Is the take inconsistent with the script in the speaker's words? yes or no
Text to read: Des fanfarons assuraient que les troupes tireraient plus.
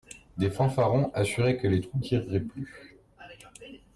no